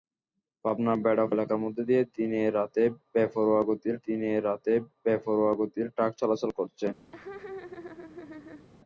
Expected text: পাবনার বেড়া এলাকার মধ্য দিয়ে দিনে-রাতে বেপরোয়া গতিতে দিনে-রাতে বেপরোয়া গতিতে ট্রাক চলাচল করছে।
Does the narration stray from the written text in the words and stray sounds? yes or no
yes